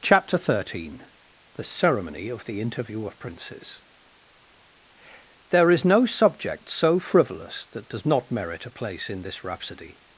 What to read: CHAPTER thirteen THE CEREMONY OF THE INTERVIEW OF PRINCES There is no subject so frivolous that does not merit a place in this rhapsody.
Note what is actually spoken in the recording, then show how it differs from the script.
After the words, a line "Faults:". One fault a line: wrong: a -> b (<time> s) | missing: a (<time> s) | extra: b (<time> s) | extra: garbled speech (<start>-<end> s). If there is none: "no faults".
CHAPTER thirteen THE CEREMONY OF THE INTERVIEW OF PRINCES There is no subject so frivolous that does not merit a place in this rhapsody.
Faults:
no faults